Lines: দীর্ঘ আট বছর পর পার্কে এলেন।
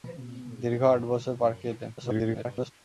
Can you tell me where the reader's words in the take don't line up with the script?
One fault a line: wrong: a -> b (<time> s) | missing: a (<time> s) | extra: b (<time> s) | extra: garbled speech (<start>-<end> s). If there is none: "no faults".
missing: পর (1.3 s)
extra: garbled speech (2.0-2.7 s)